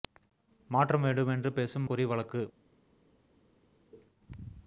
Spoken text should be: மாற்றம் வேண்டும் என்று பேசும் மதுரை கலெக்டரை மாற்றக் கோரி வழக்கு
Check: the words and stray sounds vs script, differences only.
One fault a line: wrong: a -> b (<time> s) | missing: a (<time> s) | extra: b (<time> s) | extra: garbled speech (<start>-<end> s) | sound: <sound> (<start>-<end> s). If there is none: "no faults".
missing: மதுரை கலெக்டரை மாற்றக் (1.9 s)